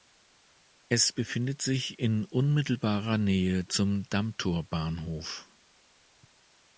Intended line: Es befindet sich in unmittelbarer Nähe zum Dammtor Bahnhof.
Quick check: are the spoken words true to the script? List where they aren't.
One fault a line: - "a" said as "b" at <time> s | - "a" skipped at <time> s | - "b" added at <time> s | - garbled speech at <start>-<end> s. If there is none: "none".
none